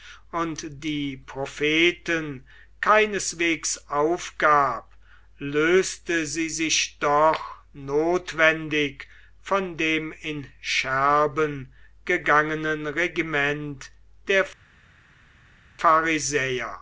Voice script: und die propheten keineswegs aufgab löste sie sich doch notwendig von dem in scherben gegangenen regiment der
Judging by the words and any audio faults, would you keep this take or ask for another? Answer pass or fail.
pass